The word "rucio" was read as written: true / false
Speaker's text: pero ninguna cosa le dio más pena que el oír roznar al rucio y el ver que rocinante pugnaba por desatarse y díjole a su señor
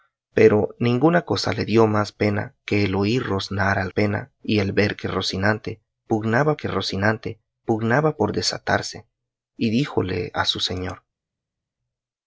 false